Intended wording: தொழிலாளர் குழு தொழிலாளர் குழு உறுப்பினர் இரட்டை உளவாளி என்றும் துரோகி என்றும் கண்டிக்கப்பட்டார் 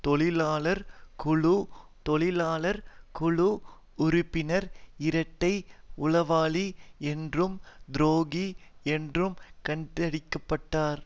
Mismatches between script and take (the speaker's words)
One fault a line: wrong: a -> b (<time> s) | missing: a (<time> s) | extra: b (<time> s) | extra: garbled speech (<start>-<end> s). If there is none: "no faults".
no faults